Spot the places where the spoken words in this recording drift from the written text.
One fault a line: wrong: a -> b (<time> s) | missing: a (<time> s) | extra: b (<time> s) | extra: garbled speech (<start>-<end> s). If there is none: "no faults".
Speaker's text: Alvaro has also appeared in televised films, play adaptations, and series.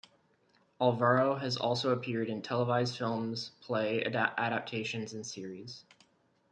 no faults